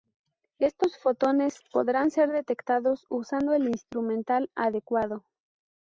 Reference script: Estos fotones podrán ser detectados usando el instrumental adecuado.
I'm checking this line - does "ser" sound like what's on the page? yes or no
yes